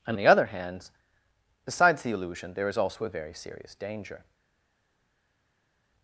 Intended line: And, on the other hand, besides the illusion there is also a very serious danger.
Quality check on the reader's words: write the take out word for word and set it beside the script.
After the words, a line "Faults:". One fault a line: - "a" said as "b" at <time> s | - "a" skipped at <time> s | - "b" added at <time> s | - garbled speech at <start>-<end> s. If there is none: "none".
And, the other hand, besides the illusion there is also a very serious danger.
Faults:
- "on" skipped at 0.2 s